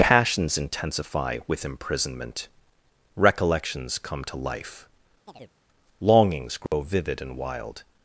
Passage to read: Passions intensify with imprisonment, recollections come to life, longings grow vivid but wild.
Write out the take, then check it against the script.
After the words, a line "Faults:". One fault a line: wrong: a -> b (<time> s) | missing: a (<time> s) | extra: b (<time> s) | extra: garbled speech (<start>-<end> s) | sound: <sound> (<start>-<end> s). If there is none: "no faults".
Passions intensify with imprisonment, recollections come to life, longings grow vivid and wild.
Faults:
sound: chirp (5.3-5.5 s)
sound: dropout (6.7-6.7 s)
wrong: but -> and (7.2 s)